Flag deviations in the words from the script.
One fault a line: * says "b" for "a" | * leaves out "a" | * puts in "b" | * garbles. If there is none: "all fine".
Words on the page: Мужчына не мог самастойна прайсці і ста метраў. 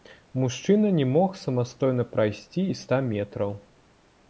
all fine